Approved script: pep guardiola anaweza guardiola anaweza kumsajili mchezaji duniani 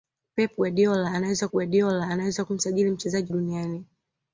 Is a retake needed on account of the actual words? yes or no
no